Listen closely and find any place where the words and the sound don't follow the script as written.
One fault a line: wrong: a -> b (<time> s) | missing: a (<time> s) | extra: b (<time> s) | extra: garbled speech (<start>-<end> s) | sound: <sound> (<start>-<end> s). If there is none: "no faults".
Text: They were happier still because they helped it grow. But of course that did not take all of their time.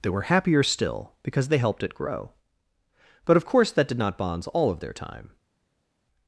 wrong: take -> bonds (4.2 s)